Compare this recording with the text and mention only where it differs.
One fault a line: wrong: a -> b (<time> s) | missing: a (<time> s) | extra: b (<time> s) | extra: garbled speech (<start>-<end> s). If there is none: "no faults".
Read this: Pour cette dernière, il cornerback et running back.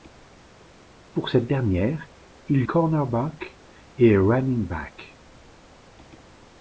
no faults